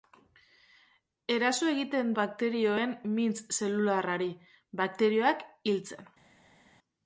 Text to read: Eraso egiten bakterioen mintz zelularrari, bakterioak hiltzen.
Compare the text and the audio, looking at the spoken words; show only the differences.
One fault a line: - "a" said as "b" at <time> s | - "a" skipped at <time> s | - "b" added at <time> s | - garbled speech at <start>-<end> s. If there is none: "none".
none